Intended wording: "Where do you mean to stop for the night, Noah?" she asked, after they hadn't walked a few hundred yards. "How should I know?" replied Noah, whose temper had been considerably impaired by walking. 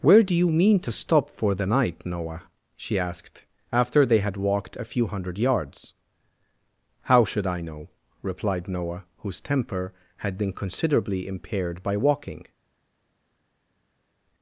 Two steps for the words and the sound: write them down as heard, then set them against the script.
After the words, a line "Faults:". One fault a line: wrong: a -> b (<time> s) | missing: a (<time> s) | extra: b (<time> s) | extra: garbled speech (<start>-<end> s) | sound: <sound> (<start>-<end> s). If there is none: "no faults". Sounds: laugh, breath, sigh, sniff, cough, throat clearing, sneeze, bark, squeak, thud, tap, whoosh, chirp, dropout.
"Where do you mean to stop for the night, Noah?" she asked, after they had walked a few hundred yards. "How should I know?" replied Noah, whose temper had been considerably impaired by walking.
Faults:
wrong: hadn't -> had (4.2 s)